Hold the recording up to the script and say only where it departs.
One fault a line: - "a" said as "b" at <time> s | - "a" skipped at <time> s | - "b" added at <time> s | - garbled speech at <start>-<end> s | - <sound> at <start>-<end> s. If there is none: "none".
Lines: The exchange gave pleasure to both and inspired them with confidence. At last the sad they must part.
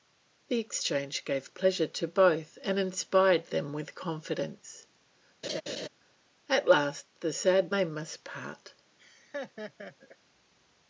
- laugh at 5.4-5.9 s
- laugh at 9.0-10.2 s